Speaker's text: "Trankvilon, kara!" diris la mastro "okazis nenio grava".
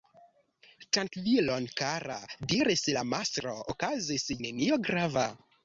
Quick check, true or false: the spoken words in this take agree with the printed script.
true